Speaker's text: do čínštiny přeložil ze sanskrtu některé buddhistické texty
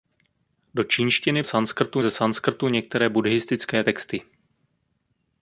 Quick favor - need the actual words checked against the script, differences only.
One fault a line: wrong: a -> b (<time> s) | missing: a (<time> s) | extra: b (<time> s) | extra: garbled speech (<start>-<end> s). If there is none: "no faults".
wrong: přeložil -> sanskrtu (1.4 s)